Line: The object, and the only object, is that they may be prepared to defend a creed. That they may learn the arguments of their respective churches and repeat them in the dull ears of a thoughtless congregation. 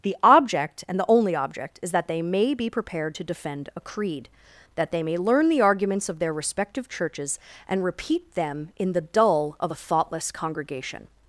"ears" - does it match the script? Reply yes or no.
no